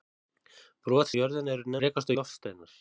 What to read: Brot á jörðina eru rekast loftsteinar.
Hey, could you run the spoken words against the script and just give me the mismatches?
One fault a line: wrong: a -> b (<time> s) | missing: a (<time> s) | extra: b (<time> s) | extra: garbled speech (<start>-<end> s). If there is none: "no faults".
no faults